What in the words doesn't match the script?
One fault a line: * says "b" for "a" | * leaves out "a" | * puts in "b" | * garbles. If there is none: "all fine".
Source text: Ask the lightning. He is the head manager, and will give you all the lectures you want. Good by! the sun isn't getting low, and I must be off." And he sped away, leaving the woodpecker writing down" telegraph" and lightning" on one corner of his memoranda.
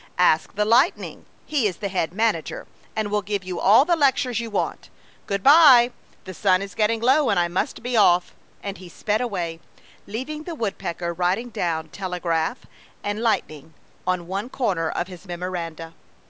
* says "is" for "isn't"